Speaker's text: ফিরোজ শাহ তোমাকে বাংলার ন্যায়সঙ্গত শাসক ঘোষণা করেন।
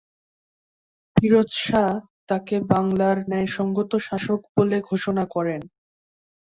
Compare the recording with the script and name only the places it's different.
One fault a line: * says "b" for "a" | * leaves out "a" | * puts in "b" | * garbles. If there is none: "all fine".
* says "তাকে" for "তোমাকে"
* puts in "বলে"